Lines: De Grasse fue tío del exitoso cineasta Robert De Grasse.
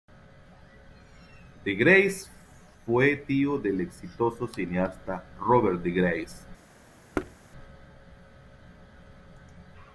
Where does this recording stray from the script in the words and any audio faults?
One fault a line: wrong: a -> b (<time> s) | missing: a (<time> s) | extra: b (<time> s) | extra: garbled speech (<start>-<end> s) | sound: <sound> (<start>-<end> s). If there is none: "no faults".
sound: thud (7.1-7.4 s)